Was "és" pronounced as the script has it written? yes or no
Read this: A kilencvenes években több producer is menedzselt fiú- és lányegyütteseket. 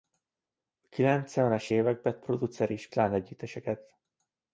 no